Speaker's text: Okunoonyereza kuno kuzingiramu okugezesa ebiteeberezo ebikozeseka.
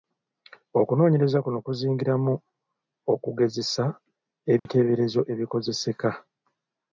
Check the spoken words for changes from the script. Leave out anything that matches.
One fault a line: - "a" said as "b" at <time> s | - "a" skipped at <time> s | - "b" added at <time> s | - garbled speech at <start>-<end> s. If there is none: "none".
none